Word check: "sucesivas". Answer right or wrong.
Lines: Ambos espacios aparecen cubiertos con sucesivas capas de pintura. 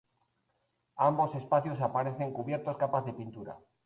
wrong